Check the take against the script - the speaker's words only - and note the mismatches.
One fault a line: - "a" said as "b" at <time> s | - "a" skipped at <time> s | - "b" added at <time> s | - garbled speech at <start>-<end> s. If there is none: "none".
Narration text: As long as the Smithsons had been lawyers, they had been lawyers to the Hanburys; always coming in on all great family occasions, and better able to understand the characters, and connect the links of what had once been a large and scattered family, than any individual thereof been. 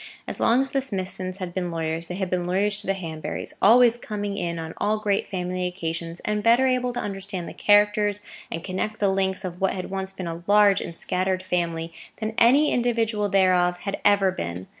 - "had ever" added at 13.8 s